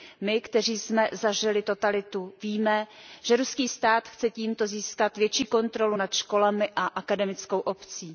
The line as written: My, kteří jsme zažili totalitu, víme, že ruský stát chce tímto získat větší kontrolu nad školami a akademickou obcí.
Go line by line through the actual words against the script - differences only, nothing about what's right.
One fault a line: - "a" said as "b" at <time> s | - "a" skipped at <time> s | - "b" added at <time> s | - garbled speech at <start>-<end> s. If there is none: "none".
none